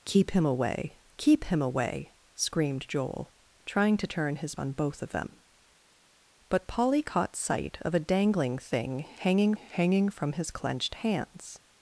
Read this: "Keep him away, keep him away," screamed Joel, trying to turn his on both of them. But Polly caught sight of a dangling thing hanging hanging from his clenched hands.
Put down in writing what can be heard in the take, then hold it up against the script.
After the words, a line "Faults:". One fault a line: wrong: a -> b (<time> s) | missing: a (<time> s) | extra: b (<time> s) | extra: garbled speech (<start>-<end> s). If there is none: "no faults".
"Keep him away, keep him away," screamed Joel, trying to turn his on both of them. But Polly caught sight of a dangling thing hanging hanging from his clenched hands.
Faults:
no faults